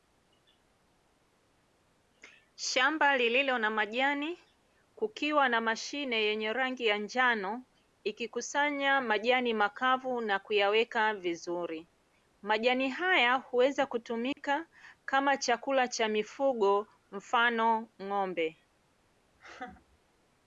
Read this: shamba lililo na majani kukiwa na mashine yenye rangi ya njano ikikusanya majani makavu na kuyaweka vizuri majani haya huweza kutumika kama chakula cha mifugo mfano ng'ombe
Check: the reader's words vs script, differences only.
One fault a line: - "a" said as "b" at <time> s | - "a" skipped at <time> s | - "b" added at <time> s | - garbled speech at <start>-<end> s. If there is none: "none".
none